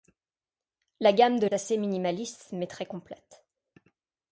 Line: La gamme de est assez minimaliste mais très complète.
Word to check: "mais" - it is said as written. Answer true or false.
true